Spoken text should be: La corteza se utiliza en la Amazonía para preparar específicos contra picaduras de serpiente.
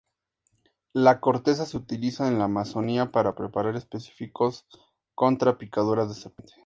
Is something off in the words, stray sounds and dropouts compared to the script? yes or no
no